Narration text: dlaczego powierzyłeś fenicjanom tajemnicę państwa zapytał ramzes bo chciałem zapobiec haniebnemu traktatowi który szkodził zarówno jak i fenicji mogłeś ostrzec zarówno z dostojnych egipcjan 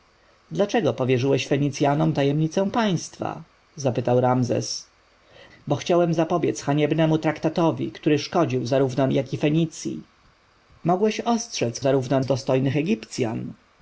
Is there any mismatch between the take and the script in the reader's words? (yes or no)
no